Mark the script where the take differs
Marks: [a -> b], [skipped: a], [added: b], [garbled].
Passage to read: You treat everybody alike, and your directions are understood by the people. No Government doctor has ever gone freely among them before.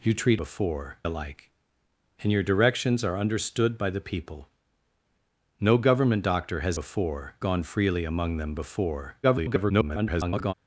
You treat [everybody -> before] alike, and your directions are understood by the people. No Government doctor has [ever -> before] gone freely among them before. [garbled]